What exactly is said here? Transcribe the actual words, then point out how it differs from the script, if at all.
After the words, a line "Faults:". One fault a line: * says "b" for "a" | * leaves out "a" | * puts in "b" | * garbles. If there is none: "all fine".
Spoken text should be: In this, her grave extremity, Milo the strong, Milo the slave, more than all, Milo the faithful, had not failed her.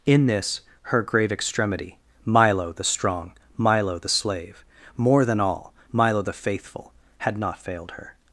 In this, her grave extremity, Milo the strong, Milo the slave, more than all, Milo the faithful, had not failed her.
Faults:
all fine